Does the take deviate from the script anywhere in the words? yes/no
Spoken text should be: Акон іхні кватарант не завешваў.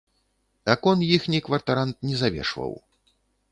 no